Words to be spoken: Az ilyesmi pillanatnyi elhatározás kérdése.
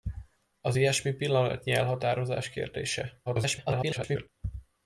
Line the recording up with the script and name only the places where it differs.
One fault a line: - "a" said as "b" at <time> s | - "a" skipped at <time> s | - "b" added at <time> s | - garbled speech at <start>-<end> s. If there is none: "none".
- garbled speech at 3.3-4.3 s